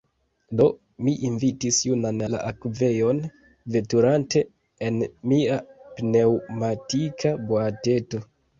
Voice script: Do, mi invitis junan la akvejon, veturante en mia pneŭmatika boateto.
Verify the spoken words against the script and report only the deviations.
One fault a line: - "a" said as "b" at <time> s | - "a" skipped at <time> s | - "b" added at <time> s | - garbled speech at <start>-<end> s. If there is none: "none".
none